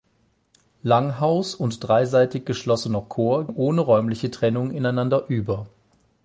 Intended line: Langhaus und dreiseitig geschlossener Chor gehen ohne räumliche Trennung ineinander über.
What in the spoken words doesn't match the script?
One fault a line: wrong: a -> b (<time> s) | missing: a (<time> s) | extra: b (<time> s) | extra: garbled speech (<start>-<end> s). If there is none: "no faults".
missing: gehen (3.5 s)